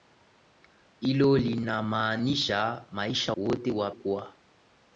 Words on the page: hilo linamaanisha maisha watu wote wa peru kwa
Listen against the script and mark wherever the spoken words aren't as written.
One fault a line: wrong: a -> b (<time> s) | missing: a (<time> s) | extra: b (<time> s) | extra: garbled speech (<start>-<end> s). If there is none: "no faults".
missing: watu (3.3 s)
missing: peru (3.9 s)